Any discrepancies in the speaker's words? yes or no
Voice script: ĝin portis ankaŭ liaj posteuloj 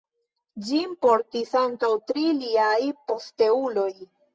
yes